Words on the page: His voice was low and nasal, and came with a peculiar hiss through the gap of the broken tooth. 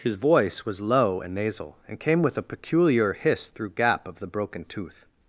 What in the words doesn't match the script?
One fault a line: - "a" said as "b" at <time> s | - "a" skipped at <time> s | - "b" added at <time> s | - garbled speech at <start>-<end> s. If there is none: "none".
- "the" skipped at 3.7 s